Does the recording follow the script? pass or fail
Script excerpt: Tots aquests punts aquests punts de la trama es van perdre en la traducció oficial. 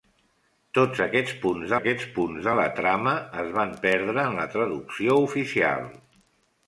pass